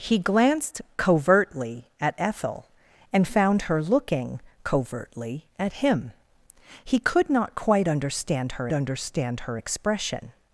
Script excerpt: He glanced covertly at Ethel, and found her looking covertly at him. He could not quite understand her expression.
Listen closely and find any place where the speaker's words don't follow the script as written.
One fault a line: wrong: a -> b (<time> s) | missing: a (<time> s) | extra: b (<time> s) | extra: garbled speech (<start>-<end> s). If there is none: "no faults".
extra: understand her (8.7 s)